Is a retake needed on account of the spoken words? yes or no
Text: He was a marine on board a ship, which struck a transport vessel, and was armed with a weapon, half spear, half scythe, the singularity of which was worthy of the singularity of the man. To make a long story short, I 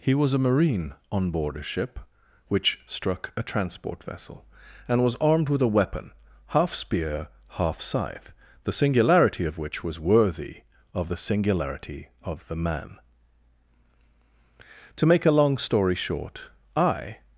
no